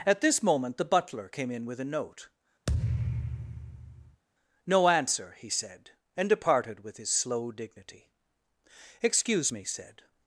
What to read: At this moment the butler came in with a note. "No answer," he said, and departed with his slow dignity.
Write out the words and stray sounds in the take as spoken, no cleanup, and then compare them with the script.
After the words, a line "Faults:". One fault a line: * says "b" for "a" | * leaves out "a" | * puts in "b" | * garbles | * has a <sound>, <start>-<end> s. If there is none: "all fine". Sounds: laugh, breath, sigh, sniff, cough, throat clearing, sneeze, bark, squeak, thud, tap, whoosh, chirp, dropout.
At this moment the butler came in with a note. "No answer," he said, and departed with his slow dignity. "Excuse me," said
Faults:
* has a thud, 2.7-4.2 s
* puts in "Excuse me said"